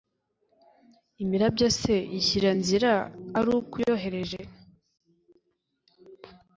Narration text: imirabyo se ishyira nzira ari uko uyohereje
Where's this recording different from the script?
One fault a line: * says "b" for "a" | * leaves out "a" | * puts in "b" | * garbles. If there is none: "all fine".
all fine